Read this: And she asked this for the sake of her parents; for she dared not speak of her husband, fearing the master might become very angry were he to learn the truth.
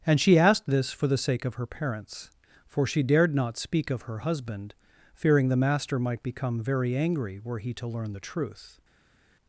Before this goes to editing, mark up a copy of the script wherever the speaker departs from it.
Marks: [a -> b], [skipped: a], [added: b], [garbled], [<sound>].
And she asked this for the sake of her parents; for she dared not speak of her husband, fearing the master might become very angry were he to learn the truth.